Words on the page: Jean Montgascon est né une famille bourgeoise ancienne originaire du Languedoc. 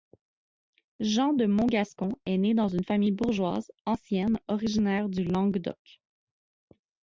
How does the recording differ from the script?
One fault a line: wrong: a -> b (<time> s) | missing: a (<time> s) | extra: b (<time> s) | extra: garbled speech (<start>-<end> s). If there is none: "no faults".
extra: de (1.3 s)
extra: dans (2.5 s)